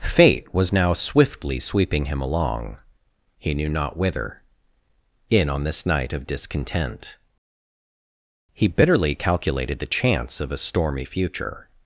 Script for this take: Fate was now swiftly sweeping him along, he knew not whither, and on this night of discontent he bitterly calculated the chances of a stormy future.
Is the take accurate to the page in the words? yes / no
no